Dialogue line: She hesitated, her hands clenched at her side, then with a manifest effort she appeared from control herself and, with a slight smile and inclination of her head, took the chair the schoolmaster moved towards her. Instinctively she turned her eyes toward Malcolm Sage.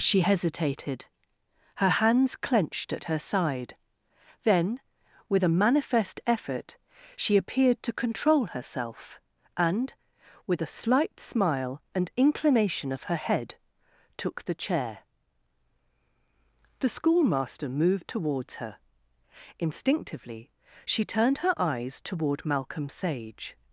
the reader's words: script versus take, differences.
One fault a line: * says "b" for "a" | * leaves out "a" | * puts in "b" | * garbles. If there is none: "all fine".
* says "to" for "from"